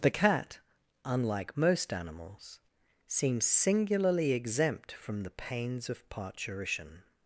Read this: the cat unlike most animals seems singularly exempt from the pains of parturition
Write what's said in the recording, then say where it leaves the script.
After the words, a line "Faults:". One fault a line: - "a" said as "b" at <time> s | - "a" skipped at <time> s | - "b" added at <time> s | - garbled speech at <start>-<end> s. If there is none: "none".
the cat unlike most animals seems singularly exempt from the pains of parturition
Faults:
none